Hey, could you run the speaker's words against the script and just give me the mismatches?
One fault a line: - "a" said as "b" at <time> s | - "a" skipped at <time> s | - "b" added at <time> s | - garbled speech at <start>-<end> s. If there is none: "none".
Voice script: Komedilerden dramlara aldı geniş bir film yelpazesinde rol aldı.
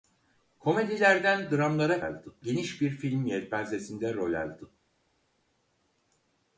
none